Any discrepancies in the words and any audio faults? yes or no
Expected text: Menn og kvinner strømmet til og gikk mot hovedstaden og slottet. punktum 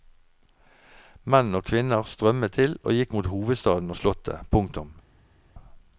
no